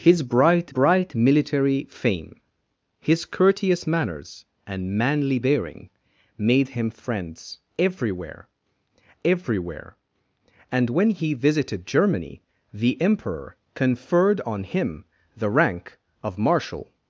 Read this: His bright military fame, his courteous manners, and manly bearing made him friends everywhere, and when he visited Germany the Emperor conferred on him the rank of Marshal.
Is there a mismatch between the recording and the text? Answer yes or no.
yes